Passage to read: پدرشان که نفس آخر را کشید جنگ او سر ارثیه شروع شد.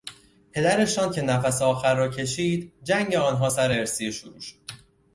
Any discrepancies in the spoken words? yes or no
yes